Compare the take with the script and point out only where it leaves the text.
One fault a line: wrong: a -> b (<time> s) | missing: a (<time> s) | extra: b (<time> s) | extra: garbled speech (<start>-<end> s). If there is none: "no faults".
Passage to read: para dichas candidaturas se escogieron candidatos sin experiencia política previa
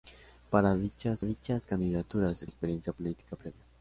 extra: dichas (1.2 s)
missing: escogieron candidatos sin (2.5 s)